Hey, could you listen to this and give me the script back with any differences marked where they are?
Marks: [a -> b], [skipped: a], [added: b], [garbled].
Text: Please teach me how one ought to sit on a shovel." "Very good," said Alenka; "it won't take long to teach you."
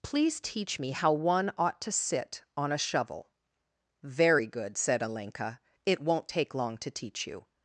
Please teach me how one ought to sit on a shovel." "Very good," said Alenka; "it won't take long to teach you."